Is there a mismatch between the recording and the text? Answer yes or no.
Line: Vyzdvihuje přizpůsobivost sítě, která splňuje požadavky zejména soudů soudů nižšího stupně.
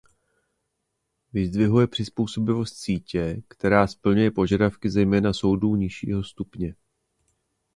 yes